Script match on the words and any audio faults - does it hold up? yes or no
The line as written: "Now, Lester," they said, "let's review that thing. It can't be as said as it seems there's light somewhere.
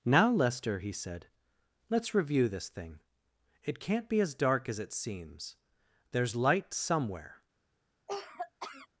no